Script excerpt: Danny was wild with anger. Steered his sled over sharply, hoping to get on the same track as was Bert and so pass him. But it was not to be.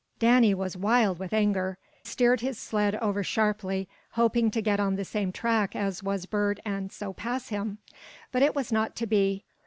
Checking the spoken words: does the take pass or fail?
pass